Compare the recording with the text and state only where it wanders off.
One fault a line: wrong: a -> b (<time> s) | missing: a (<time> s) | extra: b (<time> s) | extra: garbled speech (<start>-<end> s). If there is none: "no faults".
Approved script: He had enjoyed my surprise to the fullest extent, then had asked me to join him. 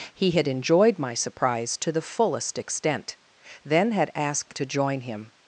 missing: me (4.5 s)